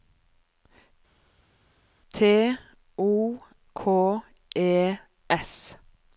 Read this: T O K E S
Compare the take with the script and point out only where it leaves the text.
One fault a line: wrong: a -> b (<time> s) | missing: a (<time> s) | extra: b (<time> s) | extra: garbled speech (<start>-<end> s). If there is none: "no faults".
no faults